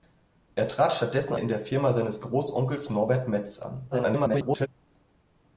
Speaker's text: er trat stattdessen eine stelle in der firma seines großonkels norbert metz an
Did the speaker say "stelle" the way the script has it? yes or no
no